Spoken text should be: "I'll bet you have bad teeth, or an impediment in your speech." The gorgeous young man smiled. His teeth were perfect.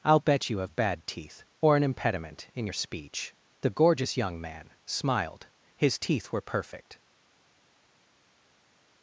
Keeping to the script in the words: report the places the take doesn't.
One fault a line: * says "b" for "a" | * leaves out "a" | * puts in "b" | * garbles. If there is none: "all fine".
all fine